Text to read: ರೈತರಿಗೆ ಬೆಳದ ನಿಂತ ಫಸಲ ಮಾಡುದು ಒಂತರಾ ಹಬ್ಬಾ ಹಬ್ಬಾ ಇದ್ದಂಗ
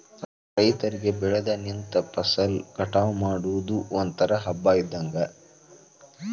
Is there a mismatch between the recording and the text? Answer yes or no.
yes